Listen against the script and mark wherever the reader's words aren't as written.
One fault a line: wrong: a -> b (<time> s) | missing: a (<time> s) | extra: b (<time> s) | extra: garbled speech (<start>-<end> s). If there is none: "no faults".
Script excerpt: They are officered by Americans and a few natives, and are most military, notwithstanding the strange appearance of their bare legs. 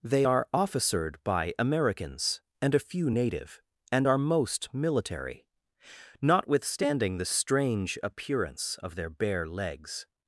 wrong: natives -> native (3.1 s)